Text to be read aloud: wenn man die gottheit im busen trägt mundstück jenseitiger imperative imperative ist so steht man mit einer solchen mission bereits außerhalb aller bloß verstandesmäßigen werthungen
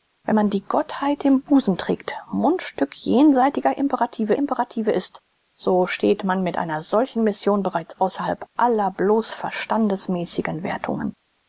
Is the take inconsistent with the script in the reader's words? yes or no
no